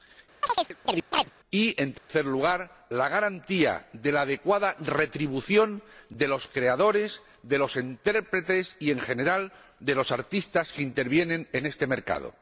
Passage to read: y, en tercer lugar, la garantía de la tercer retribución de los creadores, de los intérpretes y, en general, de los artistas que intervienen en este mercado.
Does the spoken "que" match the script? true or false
true